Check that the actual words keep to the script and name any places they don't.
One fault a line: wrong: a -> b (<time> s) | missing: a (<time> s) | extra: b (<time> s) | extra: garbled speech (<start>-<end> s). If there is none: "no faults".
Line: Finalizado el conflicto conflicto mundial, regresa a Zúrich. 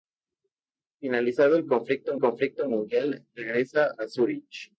no faults